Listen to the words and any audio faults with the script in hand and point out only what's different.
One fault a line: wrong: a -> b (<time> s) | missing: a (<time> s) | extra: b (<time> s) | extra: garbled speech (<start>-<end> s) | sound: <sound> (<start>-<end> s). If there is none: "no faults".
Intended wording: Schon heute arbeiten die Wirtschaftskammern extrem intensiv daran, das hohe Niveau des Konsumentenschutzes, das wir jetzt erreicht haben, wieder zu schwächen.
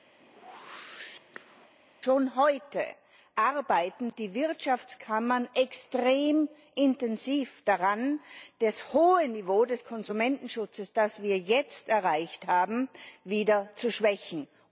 sound: whoosh (0.2-1.7 s)